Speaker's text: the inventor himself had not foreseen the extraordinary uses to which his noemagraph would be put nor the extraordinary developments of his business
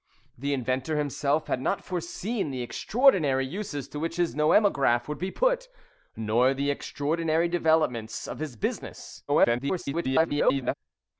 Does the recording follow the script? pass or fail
fail